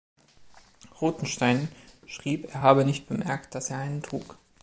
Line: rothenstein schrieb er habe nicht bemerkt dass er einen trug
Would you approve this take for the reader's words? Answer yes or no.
yes